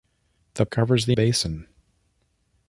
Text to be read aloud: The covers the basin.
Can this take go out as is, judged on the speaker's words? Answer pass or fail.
pass